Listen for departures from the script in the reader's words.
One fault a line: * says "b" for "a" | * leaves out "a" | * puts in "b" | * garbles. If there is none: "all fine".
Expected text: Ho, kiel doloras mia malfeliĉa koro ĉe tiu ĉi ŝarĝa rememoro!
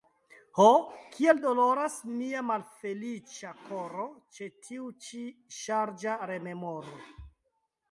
all fine